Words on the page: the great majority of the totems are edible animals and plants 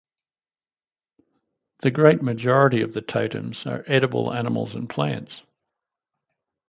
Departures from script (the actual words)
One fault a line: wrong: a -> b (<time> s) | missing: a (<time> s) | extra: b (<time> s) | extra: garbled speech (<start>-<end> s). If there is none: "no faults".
no faults